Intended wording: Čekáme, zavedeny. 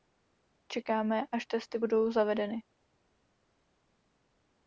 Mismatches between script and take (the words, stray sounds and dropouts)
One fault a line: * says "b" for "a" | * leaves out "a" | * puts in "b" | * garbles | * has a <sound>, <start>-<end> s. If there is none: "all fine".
* puts in "až testy budou"